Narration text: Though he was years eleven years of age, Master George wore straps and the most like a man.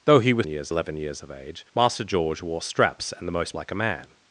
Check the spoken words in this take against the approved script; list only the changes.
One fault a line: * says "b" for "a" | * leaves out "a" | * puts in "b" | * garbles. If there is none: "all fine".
all fine